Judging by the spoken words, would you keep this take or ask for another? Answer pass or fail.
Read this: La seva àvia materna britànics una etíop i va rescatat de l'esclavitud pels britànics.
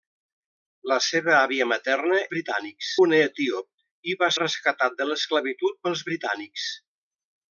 pass